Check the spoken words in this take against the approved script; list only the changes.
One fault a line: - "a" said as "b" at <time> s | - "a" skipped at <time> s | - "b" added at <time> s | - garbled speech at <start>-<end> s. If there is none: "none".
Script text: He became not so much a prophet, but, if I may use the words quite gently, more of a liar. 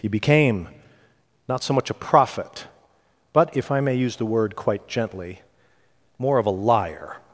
- "words" said as "word" at 4.2 s